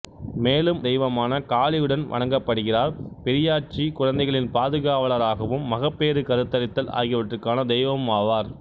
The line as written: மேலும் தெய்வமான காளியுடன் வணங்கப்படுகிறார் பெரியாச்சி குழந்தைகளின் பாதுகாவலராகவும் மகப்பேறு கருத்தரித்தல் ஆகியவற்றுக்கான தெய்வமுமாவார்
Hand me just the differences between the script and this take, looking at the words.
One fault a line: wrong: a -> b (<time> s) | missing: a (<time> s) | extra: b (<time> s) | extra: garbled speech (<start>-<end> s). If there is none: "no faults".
no faults